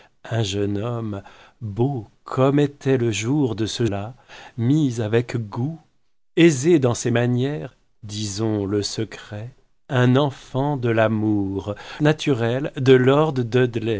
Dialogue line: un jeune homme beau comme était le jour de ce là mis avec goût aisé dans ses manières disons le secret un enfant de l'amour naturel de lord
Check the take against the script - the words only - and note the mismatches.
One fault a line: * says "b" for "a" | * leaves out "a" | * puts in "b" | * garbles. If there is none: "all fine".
all fine